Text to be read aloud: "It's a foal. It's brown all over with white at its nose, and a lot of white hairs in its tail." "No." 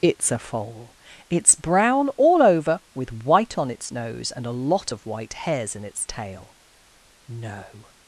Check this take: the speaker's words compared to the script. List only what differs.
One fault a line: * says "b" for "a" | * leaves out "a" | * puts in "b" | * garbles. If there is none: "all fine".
* says "on" for "at"